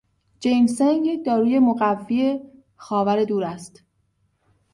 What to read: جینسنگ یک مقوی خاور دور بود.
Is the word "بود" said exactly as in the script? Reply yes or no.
no